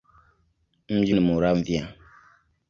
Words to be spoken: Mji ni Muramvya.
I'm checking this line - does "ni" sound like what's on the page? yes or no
yes